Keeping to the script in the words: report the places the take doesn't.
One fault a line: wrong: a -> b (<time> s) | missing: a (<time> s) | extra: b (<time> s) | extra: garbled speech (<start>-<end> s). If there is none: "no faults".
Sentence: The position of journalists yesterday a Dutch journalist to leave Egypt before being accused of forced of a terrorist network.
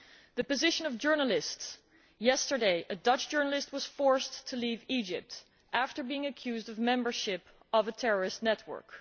extra: was forced (3.7 s)
wrong: before -> after (5.7 s)
wrong: forced -> membership (6.8 s)